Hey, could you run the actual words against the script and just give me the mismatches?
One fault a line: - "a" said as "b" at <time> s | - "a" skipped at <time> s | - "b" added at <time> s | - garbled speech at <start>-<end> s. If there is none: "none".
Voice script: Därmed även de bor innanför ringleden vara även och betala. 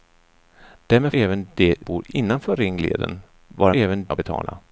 none